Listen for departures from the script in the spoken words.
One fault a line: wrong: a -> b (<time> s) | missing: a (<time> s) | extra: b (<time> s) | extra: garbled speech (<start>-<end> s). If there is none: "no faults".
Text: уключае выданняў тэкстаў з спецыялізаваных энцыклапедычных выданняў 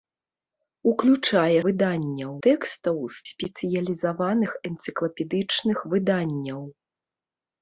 no faults